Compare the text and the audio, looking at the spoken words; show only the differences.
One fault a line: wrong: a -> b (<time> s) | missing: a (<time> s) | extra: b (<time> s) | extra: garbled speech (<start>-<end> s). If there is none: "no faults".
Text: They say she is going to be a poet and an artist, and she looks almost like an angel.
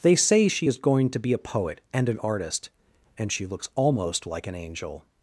no faults